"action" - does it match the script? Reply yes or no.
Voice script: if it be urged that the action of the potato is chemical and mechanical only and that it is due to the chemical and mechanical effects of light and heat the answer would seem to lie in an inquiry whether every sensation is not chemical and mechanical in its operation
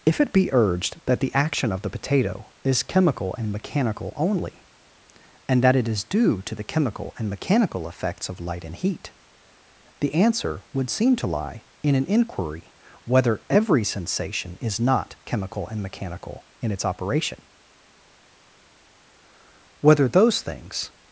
yes